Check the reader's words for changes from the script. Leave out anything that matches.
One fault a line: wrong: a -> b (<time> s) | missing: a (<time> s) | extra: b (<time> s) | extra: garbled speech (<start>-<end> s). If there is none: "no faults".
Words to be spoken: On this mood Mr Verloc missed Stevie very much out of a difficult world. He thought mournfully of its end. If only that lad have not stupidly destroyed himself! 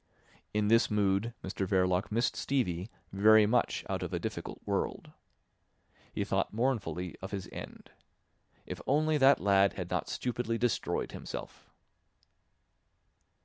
wrong: On -> In (0.5 s)
wrong: its -> his (7.3 s)
wrong: have -> had (9.7 s)